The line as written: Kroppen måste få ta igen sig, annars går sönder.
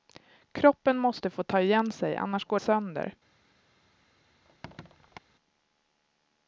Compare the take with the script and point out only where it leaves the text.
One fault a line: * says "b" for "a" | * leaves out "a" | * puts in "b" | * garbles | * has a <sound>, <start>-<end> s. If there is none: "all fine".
* has a squeak, 4.4-5.2 s